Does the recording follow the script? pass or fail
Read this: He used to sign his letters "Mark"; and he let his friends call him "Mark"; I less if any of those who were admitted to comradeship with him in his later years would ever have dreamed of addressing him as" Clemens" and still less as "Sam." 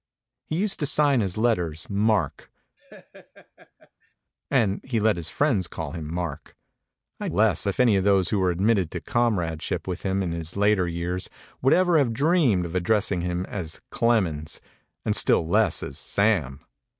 pass